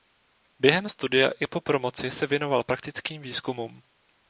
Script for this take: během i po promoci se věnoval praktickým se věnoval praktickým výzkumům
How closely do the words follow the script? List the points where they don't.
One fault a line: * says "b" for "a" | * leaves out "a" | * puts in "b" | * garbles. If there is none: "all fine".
* puts in "studia"
* leaves out "se věnoval praktickým"